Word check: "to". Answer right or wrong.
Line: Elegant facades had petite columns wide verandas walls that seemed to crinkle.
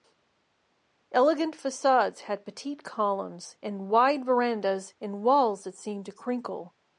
right